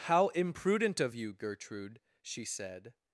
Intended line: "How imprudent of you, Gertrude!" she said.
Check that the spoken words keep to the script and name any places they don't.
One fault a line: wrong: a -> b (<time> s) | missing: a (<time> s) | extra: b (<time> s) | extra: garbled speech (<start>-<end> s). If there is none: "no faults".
no faults